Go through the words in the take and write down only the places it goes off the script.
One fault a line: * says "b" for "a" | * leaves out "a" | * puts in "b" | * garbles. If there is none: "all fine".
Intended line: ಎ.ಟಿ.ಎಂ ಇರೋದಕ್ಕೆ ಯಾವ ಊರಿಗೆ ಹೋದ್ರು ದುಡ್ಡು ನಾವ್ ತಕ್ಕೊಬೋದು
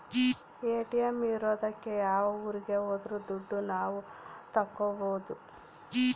all fine